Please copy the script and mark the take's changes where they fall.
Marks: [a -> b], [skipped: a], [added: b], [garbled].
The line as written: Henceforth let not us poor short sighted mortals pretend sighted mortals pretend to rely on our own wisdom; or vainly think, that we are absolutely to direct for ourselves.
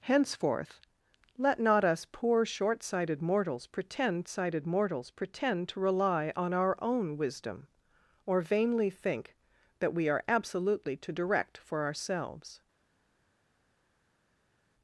Henceforth let not us poor short sighted mortals pretend sighted mortals pretend to rely on our own wisdom; or vainly think, that we are absolutely to direct for ourselves.